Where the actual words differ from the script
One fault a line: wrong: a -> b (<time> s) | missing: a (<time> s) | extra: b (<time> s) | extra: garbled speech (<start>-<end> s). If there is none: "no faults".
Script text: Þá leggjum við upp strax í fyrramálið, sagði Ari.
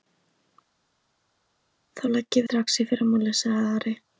missing: við upp (2.5 s)